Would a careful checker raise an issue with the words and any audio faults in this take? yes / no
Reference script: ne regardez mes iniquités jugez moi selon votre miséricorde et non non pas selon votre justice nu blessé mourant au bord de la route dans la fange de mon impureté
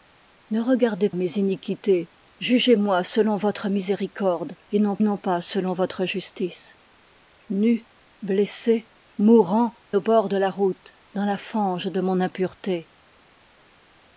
no